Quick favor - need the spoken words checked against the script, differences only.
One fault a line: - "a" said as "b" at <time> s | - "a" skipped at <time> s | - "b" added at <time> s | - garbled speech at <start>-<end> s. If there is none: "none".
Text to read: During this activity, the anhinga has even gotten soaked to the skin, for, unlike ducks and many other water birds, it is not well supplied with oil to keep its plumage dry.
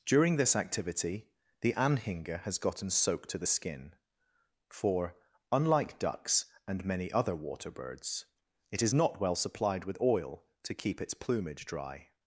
- "even" skipped at 2.6 s